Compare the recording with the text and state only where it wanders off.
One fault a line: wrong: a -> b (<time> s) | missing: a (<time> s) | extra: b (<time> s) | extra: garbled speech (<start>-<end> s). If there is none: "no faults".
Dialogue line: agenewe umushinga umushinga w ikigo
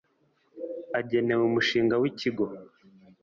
missing: umushinga (1.9 s)